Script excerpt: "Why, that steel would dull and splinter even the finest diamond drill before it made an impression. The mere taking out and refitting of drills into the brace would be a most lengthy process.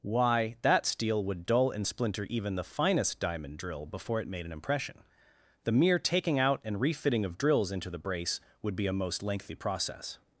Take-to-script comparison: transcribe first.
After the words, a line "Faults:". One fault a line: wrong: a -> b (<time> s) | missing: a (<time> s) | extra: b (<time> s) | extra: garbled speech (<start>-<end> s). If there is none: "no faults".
"Why, that steel would dull and splinter even the finest diamond drill before it made an impression. The mere taking out and refitting of drills into the brace would be a most lengthy process.
Faults:
no faults